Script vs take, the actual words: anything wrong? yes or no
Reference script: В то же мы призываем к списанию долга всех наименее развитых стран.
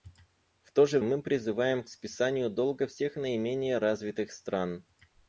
no